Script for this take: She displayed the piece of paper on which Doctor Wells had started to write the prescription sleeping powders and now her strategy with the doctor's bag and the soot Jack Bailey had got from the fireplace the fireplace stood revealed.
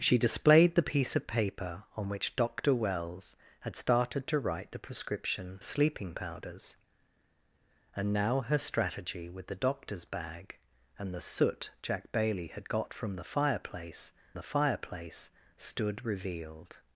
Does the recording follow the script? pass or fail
pass